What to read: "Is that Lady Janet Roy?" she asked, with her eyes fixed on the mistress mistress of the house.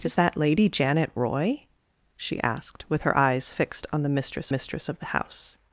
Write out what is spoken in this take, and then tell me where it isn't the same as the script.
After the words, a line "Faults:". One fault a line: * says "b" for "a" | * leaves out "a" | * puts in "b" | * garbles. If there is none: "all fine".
"Is that Lady Janet Roy?" she asked, with her eyes fixed on the mistress mistress of the house.
Faults:
all fine